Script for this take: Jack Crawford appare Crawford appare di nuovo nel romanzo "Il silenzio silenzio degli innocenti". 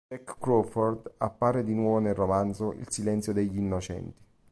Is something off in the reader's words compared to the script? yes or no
yes